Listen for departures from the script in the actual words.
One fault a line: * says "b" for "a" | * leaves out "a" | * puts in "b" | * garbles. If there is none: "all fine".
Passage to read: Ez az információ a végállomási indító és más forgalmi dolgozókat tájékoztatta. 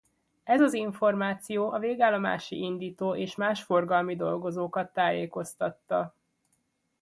all fine